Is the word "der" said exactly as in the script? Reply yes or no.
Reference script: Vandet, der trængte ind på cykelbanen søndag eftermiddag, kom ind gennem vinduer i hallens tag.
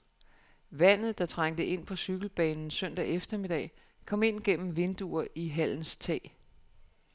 yes